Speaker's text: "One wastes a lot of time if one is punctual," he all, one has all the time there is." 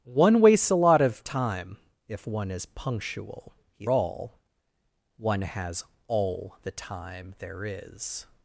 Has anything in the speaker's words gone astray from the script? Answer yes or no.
no